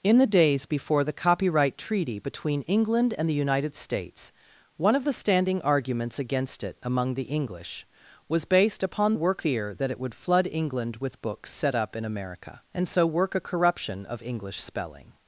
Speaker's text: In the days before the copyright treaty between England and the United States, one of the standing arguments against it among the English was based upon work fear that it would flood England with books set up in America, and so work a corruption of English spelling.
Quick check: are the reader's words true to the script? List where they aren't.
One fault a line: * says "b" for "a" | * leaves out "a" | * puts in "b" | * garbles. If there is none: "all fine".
all fine